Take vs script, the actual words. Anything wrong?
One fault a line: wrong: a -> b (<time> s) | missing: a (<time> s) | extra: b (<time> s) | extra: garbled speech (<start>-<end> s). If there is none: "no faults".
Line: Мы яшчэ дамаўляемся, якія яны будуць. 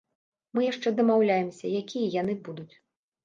no faults